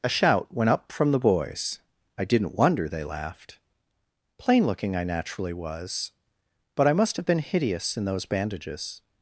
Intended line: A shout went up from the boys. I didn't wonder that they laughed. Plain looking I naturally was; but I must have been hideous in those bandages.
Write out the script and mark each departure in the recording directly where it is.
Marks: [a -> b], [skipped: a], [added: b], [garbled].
A shout went up from the boys. I didn't wonder [skipped: that] they laughed. Plain looking I naturally was; but I must have been hideous in those bandages.